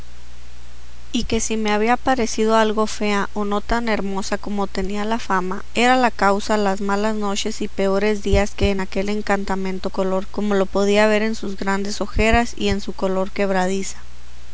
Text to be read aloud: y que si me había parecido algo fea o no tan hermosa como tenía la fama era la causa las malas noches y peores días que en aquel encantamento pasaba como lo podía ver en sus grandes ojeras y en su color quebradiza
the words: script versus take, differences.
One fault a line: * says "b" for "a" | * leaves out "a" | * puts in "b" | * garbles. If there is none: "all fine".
* says "color" for "pasaba"